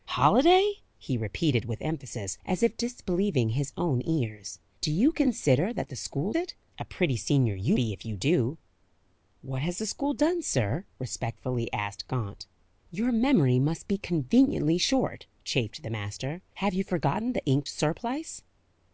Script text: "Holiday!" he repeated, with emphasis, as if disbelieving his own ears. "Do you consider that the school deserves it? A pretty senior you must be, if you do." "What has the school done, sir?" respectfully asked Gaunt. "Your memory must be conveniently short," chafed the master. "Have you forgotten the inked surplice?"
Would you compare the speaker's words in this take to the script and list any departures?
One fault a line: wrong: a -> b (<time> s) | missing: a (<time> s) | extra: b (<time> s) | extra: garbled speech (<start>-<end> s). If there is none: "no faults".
missing: deserves (6.3 s)
missing: must (7.8 s)